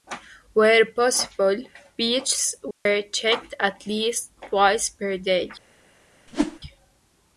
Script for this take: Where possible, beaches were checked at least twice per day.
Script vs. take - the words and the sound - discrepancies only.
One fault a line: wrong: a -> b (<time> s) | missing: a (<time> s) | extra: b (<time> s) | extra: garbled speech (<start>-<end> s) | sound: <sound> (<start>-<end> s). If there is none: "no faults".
sound: dropout (2.7-2.9 s)
sound: whoosh (6.3-6.6 s)